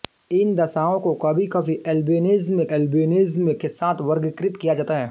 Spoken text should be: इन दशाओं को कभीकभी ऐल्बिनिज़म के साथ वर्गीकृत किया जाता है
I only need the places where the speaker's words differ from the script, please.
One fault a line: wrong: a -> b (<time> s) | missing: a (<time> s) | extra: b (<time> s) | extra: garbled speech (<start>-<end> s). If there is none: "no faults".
extra: ऐल्बिनिज़म (2.7 s)